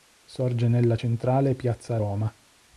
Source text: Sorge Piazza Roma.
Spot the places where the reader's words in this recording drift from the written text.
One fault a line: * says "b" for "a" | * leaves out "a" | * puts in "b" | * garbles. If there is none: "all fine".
* puts in "nella centrale"